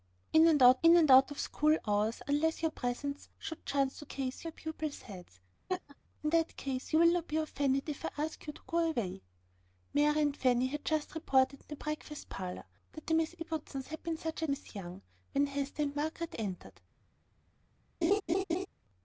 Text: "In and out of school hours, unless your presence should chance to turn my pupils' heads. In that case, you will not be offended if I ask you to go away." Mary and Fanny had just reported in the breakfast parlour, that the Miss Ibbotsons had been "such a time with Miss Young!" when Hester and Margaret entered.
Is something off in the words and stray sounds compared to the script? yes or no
yes